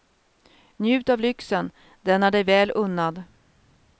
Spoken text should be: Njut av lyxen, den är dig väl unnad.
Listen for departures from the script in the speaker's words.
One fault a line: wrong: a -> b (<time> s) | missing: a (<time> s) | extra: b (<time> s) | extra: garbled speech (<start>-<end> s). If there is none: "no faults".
no faults